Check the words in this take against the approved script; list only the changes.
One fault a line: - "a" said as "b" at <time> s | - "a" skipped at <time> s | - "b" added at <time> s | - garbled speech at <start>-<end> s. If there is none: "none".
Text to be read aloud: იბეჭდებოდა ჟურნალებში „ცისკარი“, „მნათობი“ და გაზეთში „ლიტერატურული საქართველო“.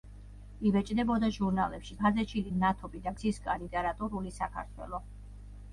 - "ცისკარი" said as "გაზეთში" at 2.0 s
- "გაზეთში" said as "ცისკარი" at 3.2 s